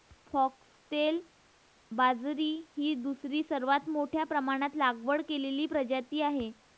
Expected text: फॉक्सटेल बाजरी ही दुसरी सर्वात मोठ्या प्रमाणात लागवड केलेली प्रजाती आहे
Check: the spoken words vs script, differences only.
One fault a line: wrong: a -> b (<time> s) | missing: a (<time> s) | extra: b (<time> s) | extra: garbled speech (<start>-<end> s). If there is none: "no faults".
no faults